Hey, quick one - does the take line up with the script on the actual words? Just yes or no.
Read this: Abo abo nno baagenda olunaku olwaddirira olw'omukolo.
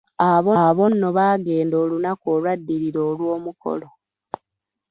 yes